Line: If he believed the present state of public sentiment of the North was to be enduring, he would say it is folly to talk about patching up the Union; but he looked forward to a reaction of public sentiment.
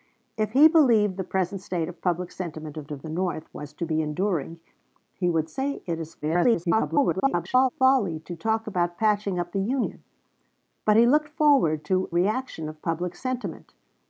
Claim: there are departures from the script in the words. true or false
true